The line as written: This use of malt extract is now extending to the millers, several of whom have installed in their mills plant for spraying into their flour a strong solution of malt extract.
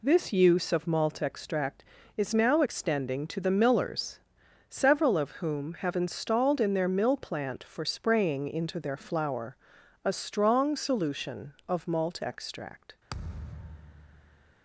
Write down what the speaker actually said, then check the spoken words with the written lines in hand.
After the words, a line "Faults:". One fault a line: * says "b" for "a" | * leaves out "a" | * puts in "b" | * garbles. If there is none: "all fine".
This use of malt extract is now extending to the millers, several of whom have installed in their mill plant for spraying into their flour a strong solution of malt extract.
Faults:
* says "mill" for "mills"